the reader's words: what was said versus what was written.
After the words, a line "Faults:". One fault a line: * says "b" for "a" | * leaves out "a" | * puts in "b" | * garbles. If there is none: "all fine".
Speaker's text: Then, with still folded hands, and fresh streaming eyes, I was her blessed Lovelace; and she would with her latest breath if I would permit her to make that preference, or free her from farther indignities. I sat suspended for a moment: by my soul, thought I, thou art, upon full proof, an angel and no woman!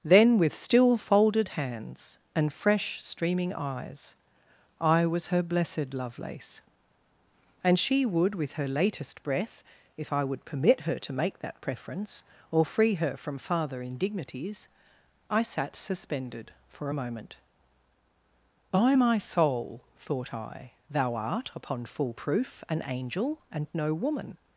Then, with still folded hands, and fresh streaming eyes, I was her blessed Lovelace; and she would with her latest breath if I would permit her to make that preference, or free her from farther indignities. I sat suspended for a moment: by my soul, thought I, thou art, upon full proof, an angel and no woman!
Faults:
all fine